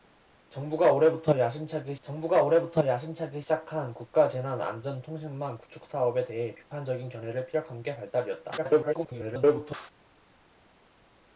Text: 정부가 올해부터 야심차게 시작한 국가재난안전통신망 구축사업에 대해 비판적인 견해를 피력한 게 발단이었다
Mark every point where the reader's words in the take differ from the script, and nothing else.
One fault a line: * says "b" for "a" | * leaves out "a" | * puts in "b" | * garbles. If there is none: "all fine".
* puts in "정부가 올해부터 야심차게"
* garbles